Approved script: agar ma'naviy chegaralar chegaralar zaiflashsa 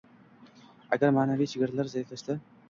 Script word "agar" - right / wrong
right